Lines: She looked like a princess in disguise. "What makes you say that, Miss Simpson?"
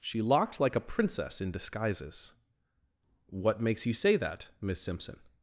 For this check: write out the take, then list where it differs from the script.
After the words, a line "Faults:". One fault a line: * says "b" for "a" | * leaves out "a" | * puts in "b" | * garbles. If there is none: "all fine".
She locked like a princess in disguises. "What makes you say that, Miss Simpson?"
Faults:
* says "locked" for "looked"
* says "disguises" for "disguise"